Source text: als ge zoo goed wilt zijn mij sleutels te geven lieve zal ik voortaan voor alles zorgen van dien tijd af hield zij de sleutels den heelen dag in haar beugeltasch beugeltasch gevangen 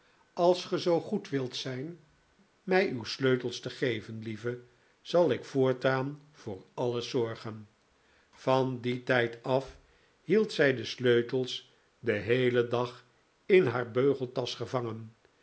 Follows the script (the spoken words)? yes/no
no